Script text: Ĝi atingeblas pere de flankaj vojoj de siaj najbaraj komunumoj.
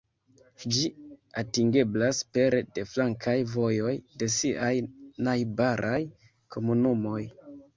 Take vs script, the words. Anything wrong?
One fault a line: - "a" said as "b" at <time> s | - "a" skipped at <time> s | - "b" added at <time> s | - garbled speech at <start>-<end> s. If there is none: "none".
none